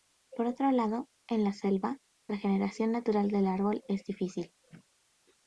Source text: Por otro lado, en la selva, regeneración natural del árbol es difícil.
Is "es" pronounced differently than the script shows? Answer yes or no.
no